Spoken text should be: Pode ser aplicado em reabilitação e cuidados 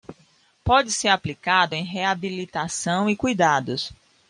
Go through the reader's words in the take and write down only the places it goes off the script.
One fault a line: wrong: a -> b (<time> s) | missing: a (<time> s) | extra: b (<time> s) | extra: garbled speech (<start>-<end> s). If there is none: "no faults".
no faults